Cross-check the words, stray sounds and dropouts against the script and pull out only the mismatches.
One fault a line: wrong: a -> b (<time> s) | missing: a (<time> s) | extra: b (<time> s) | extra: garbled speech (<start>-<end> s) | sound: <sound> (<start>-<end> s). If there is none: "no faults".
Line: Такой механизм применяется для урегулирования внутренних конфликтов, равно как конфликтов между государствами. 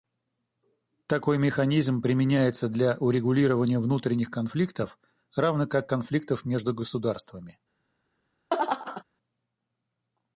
sound: laugh (8.5-9.0 s)